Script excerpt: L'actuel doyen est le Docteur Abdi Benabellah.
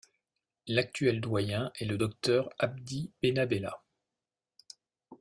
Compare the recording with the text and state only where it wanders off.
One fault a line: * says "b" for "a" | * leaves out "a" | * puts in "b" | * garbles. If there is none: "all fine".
all fine